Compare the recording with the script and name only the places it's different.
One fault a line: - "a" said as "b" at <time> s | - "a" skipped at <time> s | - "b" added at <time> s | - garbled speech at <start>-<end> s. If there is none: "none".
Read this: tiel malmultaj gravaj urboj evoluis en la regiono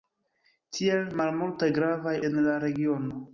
- "urboj evoluis" skipped at 2.2 s